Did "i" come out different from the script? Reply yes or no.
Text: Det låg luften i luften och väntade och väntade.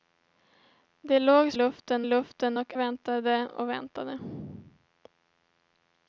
no